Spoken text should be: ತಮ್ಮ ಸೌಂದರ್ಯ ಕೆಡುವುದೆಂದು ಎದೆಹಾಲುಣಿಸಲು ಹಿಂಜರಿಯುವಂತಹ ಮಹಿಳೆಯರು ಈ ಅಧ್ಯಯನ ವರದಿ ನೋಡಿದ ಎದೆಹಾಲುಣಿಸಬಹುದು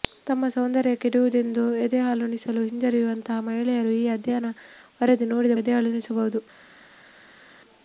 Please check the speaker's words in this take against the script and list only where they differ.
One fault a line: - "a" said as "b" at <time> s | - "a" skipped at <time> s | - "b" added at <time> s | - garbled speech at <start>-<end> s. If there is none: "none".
none